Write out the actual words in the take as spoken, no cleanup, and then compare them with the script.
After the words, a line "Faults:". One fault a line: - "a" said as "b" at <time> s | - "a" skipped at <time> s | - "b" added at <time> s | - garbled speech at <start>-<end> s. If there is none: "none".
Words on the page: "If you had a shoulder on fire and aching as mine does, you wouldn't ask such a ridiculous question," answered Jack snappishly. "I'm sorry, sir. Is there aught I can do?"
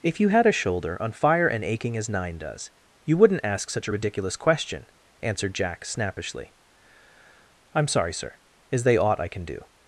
"If you had a shoulder on fire and aching as nine does, you wouldn't ask such a ridiculous question," answered Jack snappishly. "I'm sorry, sir. Is they aught I can do?"
Faults:
- "mine" said as "nine" at 2.1 s
- "there" said as "they" at 8.8 s